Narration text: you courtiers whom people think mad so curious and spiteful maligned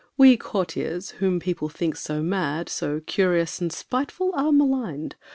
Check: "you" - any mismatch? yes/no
yes